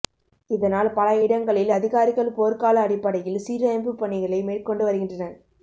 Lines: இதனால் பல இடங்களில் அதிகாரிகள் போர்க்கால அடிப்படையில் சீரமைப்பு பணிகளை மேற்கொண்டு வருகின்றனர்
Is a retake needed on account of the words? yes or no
no